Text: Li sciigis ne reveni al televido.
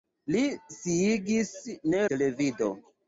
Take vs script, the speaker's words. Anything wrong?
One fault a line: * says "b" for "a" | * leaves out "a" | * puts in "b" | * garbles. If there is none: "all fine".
* leaves out "reveni al"